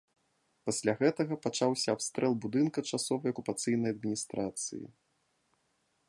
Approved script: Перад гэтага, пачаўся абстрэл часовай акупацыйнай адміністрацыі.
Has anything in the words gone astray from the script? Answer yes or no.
yes